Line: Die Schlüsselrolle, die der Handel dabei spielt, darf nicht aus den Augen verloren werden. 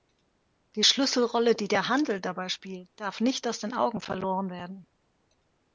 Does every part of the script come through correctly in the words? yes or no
yes